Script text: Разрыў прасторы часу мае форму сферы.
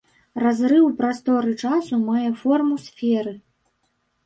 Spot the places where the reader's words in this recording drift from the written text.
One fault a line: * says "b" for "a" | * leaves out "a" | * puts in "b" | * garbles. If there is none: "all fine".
all fine